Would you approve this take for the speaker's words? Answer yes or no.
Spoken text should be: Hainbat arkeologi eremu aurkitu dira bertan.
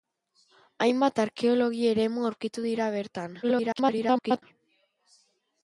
no